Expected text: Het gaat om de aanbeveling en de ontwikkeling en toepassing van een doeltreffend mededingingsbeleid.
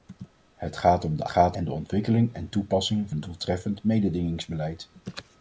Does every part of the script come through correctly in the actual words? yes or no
no